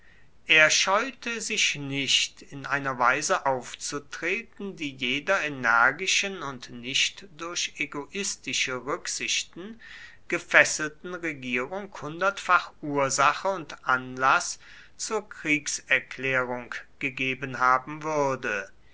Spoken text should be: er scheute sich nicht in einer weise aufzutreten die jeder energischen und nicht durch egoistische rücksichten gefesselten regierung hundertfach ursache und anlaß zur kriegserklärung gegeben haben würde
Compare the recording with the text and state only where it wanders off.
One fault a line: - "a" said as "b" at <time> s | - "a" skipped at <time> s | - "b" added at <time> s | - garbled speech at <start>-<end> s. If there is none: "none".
none